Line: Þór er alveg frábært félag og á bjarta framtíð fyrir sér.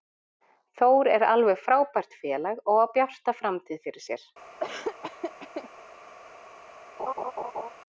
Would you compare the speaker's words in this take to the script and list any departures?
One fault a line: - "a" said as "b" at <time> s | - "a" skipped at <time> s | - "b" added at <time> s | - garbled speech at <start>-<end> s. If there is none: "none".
none